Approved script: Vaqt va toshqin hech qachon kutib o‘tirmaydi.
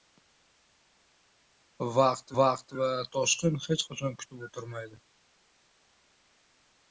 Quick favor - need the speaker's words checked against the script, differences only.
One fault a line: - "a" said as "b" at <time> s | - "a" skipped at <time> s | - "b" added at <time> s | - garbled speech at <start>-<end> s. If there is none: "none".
- "vaqt" added at 2.4 s